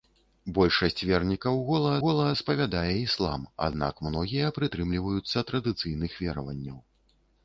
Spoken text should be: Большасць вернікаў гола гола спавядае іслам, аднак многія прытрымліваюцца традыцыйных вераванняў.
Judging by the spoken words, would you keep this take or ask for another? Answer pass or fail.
pass